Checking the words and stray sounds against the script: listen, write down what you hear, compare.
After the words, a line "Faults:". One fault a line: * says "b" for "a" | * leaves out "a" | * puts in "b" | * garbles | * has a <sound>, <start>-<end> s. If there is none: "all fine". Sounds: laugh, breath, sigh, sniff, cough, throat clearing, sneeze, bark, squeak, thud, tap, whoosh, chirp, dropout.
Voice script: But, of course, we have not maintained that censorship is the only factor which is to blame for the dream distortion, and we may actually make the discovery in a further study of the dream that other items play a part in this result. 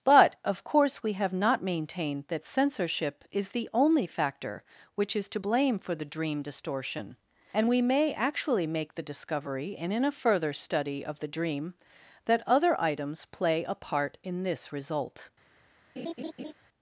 But, of course, we have not maintained that censorship is the only factor which is to blame for the dream distortion, and we may actually make the discovery and in a further study of the dream that other items play a part in this result.
Faults:
* puts in "and"
* has a laugh, 16.0-16.5 s